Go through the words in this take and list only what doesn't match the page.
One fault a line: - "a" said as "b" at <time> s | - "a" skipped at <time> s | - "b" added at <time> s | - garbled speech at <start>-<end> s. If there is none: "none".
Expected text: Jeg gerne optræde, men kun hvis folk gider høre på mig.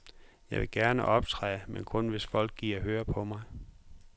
- "vil" added at 0.6 s